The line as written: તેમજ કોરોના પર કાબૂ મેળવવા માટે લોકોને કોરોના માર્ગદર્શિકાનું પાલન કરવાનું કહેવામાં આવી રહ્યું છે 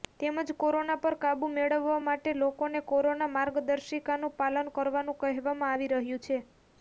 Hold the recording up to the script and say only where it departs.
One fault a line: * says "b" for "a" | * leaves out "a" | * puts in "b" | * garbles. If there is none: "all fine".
all fine